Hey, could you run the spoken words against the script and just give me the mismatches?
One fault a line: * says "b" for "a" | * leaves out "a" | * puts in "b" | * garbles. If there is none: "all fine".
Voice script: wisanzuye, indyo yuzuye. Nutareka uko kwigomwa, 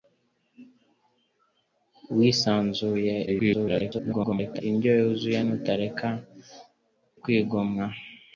* garbles
* leaves out "uko"